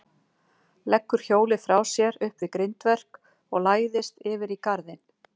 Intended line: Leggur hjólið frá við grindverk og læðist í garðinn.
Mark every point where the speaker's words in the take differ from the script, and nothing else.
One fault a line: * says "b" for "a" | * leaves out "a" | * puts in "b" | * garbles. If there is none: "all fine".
* puts in "sér upp"
* puts in "yfir"